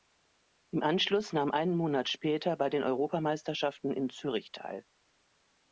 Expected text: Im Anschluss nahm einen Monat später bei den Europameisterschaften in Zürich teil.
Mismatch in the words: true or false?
false